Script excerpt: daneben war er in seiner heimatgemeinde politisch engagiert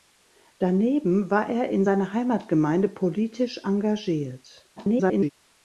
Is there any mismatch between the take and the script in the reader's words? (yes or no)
yes